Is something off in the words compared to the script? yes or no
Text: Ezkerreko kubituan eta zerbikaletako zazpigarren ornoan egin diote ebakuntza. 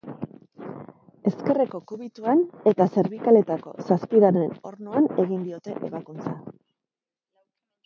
no